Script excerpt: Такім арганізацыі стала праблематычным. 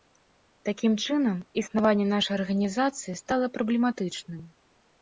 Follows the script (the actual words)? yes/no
no